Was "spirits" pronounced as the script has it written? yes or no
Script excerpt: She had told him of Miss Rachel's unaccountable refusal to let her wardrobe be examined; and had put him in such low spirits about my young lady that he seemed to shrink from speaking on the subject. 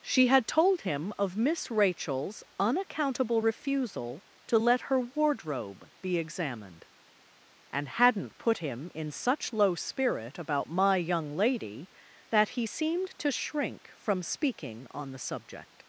no